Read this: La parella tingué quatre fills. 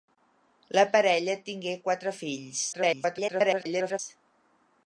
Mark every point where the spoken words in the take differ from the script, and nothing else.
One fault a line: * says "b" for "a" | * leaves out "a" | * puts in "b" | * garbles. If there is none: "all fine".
* garbles